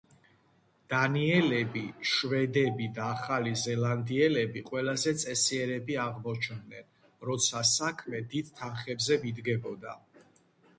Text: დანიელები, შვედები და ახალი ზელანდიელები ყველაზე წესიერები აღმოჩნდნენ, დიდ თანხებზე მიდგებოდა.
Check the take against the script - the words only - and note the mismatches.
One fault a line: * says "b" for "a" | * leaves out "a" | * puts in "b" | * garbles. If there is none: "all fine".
* puts in "როცა საქმე"